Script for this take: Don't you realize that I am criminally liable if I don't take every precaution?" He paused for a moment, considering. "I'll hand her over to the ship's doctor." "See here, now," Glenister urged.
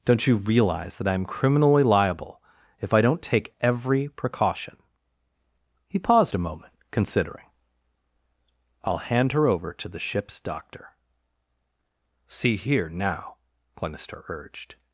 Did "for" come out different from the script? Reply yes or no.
yes